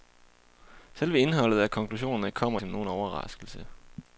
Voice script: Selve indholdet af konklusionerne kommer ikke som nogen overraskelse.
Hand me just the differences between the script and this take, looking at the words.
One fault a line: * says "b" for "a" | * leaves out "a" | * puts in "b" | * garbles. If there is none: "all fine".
* leaves out "ikke"